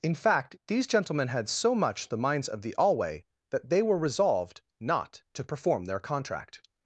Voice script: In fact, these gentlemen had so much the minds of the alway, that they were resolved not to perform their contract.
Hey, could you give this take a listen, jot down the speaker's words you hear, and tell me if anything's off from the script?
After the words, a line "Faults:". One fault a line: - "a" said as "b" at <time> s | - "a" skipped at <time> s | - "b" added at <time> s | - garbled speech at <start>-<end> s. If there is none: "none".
In fact, these gentlemen had so much the minds of the alway, that they were resolved not to perform their contract.
Faults:
none